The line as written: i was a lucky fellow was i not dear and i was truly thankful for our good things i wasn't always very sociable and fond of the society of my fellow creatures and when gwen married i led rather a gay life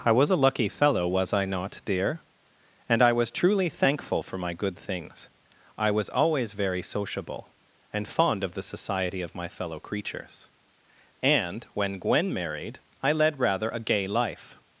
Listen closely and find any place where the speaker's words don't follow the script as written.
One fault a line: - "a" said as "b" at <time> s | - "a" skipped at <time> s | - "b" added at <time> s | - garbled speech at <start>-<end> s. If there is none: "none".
- "our" said as "my" at 4.3 s
- "wasn't" said as "was" at 5.9 s